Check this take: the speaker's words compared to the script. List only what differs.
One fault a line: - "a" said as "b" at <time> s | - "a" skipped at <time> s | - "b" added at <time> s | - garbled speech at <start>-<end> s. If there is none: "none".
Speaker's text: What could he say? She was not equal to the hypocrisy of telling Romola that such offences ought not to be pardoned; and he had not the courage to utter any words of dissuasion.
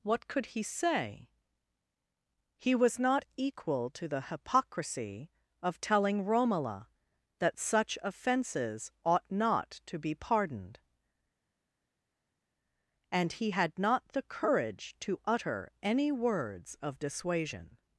- "She" said as "He" at 2.6 s